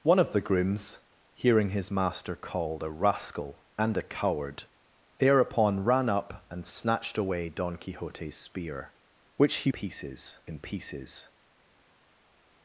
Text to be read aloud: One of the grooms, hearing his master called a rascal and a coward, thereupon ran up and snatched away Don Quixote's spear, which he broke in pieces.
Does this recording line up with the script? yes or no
no